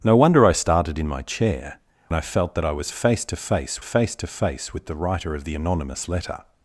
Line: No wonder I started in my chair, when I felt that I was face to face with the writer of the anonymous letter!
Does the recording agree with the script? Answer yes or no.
no